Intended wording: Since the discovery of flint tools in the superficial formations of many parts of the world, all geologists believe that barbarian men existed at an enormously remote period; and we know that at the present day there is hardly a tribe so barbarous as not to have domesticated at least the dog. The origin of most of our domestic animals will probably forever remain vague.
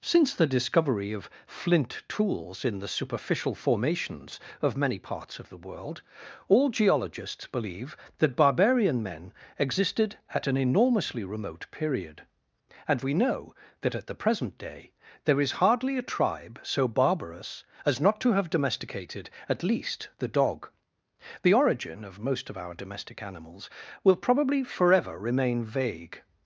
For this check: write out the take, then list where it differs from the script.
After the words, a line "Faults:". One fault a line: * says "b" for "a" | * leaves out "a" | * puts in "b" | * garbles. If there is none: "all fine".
Since the discovery of flint tools in the superficial formations of many parts of the world, all geologists believe that barbarian men existed at an enormously remote period; and we know that at the present day there is hardly a tribe so barbarous as not to have domesticated at least the dog. The origin of most of our domestic animals will probably forever remain vague.
Faults:
all fine